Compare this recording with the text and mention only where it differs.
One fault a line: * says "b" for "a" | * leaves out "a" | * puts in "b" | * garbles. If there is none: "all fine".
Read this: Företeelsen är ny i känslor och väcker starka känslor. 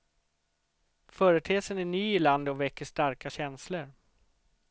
* says "landet" for "känslor"